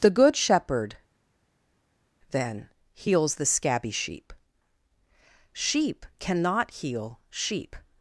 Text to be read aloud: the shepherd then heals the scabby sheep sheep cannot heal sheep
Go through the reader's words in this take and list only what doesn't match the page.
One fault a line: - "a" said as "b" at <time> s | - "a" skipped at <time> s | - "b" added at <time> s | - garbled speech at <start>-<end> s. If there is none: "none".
- "good" added at 0.1 s